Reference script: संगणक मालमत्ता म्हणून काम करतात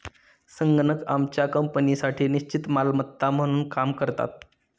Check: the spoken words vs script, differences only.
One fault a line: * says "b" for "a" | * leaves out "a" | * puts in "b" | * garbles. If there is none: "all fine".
* puts in "आमच्या कंपनीसाठी निश्चित"